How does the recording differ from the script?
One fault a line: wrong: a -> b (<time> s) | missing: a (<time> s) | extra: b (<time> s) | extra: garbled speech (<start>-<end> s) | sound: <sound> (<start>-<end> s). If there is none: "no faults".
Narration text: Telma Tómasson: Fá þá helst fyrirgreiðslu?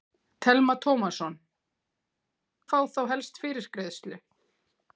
no faults